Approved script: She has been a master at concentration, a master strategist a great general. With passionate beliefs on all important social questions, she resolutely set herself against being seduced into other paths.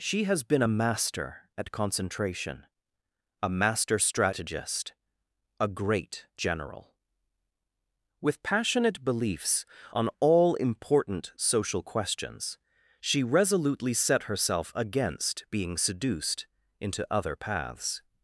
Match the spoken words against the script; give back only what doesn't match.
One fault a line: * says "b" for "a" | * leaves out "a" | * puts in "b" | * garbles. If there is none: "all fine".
all fine